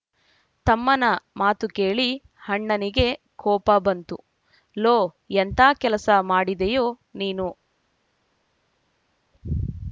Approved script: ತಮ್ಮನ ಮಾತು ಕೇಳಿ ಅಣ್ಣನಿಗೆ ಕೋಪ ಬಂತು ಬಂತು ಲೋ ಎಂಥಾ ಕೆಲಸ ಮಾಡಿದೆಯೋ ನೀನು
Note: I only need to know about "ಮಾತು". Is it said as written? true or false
true